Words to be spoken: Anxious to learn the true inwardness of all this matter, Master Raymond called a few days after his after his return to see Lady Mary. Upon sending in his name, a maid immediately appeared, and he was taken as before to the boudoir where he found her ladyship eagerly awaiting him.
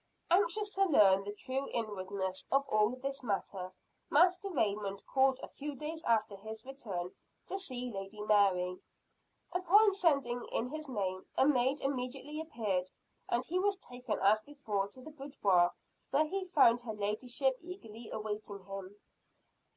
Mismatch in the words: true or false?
true